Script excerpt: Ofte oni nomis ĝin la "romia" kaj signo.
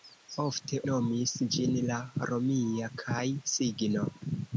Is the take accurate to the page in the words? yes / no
no